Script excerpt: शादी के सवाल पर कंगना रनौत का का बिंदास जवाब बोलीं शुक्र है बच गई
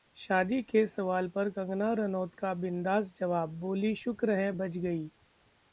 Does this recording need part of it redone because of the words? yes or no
yes